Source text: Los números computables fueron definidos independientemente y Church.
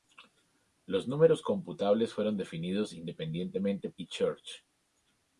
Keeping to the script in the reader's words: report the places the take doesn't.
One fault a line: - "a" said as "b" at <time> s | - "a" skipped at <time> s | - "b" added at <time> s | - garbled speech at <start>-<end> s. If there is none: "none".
none